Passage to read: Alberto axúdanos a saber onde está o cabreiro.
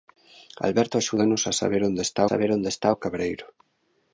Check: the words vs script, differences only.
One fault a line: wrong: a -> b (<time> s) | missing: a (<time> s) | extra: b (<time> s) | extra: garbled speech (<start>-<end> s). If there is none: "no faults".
extra: saber onde está (2.3 s)